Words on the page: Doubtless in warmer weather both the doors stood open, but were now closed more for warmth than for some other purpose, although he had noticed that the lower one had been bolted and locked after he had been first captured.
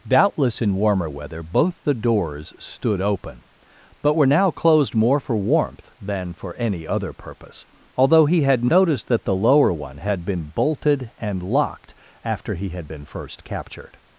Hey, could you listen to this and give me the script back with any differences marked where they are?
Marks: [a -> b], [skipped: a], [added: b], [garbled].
Doubtless in warmer weather both the doors stood open, but were now closed more for warmth than for [some -> any] other purpose, although he had noticed that the lower one had been bolted and locked after he had been first captured.